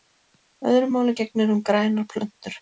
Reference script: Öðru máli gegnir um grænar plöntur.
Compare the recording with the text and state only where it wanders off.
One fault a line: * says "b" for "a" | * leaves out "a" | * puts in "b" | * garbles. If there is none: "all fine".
all fine